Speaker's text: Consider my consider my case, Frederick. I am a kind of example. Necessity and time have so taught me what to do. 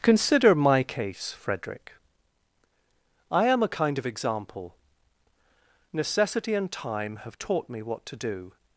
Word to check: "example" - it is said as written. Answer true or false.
true